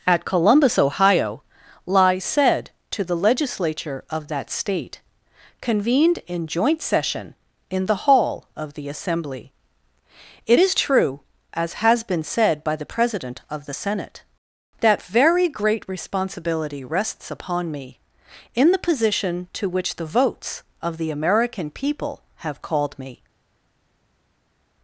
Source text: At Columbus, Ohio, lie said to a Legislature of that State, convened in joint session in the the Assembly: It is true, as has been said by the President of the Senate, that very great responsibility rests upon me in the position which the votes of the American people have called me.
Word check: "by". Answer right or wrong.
right